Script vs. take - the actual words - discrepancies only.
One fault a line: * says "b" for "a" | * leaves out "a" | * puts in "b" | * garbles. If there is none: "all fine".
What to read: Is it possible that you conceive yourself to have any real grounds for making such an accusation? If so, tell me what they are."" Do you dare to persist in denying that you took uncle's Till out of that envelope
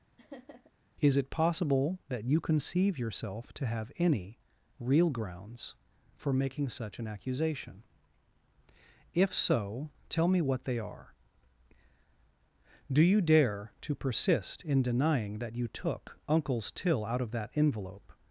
all fine